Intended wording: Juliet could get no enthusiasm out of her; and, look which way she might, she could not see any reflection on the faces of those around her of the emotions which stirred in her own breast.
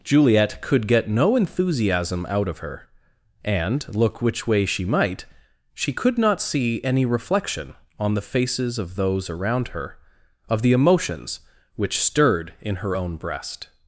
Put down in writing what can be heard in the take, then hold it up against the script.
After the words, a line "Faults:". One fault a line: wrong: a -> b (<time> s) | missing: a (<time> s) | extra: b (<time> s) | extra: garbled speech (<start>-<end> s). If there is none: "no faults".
Juliet could get no enthusiasm out of her; and, look which way she might, she could not see any reflection on the faces of those around her of the emotions which stirred in her own breast.
Faults:
no faults